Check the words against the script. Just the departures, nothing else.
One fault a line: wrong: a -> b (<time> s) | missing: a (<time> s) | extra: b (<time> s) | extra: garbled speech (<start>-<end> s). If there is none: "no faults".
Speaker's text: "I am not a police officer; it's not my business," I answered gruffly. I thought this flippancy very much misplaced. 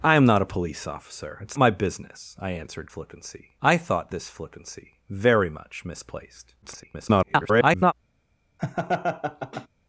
missing: not (1.6 s)
wrong: gruffly -> flippancy (2.9 s)
extra: garbled speech (6.6-7.9 s)